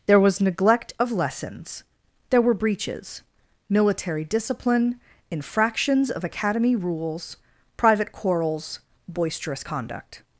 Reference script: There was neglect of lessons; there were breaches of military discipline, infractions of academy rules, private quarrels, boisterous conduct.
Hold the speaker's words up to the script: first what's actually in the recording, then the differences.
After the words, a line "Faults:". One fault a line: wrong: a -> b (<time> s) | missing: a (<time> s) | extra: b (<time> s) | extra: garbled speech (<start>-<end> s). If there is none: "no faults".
There was neglect of lessons; there were breaches military discipline, infractions of academy rules, private quarrels, boisterous conduct.
Faults:
missing: of (3.2 s)